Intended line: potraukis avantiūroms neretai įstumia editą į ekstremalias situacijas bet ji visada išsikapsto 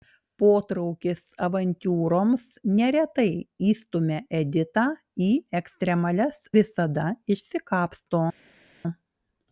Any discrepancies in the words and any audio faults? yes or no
yes